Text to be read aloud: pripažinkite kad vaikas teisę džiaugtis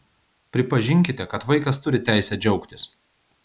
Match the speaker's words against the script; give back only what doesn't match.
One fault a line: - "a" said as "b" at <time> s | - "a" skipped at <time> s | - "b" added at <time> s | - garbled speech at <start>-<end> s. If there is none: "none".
- "turi" added at 1.9 s